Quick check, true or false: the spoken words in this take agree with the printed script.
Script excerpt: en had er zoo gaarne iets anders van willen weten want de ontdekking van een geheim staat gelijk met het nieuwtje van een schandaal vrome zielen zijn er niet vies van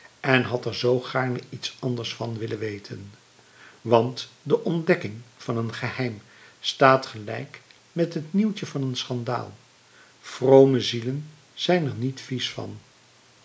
true